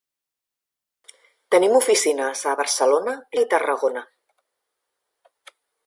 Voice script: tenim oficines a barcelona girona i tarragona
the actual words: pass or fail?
fail